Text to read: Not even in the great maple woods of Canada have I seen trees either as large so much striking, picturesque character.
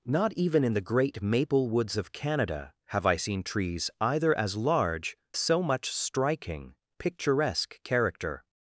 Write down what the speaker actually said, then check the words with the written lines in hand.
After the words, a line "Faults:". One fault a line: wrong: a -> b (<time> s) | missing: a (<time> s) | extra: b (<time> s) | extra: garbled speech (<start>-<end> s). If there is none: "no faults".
Not even in the great maple woods of Canada have I seen trees either as large so much striking, picturesque character.
Faults:
no faults